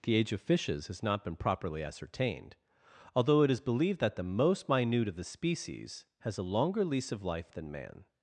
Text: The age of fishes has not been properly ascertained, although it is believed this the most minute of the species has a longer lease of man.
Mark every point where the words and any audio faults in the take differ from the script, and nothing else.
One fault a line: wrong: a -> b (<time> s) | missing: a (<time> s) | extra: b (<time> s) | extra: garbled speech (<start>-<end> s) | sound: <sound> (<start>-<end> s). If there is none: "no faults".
wrong: this -> that (4.0 s)
extra: life than (7.2 s)